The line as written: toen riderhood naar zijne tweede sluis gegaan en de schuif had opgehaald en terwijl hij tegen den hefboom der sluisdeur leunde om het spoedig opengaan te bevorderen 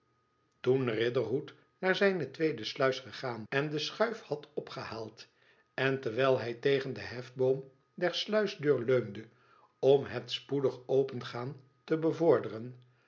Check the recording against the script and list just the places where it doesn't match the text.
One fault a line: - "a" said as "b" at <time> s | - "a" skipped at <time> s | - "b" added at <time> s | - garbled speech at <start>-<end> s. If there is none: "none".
none